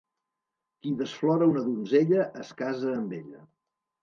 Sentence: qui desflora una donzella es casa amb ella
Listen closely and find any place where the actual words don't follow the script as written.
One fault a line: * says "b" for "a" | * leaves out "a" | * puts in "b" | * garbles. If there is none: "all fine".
all fine